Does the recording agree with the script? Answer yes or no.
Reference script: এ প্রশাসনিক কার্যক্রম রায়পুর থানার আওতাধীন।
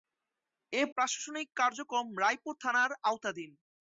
yes